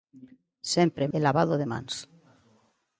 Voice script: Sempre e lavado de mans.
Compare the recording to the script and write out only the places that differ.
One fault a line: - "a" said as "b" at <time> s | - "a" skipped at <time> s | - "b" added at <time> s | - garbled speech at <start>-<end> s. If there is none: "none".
none